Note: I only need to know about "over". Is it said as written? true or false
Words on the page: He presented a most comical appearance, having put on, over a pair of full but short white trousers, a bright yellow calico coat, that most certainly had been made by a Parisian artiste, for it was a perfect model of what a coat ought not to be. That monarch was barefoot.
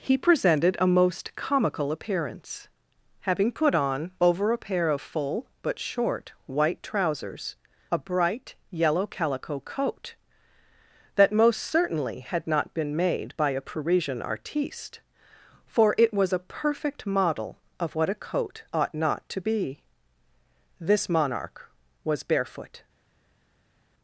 true